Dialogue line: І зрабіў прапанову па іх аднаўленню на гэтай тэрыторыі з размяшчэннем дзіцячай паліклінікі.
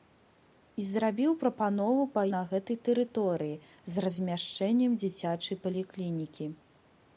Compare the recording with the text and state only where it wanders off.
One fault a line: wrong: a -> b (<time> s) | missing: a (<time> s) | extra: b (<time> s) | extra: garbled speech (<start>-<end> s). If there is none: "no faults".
missing: іх аднаўленню (2.2 s)